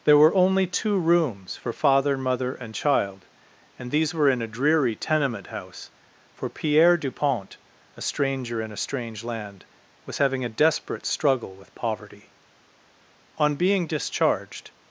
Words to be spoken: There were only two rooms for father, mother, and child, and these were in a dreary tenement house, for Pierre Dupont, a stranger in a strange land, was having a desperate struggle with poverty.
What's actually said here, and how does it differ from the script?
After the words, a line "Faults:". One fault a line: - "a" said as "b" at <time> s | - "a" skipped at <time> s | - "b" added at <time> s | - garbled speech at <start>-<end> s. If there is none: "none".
There were only two rooms for father, mother, and child, and these were in a dreary tenement house, for Pierre Dupont, a stranger in a strange land, was having a desperate struggle with poverty. On being discharged
Faults:
- "On being discharged" added at 13.4 s